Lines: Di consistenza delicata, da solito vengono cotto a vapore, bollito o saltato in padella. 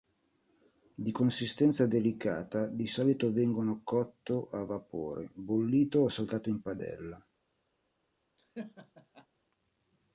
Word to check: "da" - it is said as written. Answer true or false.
false